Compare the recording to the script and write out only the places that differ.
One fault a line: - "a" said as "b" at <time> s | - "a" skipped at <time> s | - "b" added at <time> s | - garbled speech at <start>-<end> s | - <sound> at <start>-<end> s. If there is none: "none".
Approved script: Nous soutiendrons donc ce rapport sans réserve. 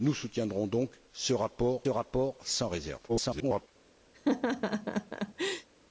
- "rapport" added at 1.9 s
- garbled speech at 3.1-3.7 s
- laugh at 4.1-5.7 s